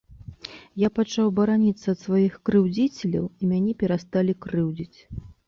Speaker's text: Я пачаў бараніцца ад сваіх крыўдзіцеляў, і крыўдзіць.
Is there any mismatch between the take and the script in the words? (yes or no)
yes